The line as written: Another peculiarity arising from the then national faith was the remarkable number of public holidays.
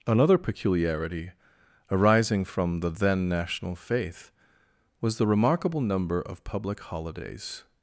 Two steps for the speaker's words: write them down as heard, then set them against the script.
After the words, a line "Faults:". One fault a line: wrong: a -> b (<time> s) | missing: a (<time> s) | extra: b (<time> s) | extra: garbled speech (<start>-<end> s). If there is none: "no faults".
Another peculiarity arising from the then national faith was the remarkable number of public holidays.
Faults:
no faults